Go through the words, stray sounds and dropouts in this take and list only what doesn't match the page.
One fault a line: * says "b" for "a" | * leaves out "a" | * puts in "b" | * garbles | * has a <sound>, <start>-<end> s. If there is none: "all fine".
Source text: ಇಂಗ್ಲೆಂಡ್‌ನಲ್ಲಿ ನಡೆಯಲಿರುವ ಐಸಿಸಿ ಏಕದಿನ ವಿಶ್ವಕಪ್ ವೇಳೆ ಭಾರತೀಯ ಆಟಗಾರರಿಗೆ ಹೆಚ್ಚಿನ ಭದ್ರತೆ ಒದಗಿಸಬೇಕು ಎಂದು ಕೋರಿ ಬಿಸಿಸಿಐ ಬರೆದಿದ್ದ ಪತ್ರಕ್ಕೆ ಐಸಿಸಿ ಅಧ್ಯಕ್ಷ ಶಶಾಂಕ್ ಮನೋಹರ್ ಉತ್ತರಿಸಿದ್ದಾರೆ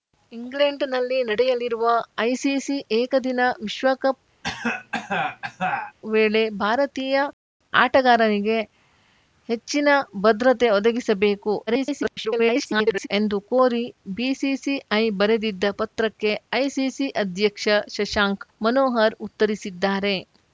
* has a cough, 4.4-6.0 s
* garbles